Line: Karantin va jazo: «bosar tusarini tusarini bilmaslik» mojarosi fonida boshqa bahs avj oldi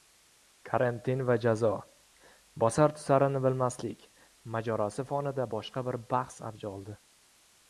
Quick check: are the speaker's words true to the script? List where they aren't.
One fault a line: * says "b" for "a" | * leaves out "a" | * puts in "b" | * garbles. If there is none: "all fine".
* leaves out "tusarini"
* puts in "bir"